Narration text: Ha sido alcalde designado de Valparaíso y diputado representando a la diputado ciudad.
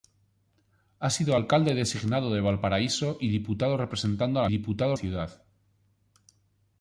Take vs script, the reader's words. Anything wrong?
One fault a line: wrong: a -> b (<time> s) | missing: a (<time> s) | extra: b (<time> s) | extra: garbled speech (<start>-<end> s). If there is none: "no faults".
no faults